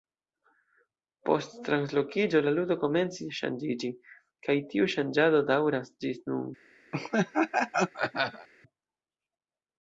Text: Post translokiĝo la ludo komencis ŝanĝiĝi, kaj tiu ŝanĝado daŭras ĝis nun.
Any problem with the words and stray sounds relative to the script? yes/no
yes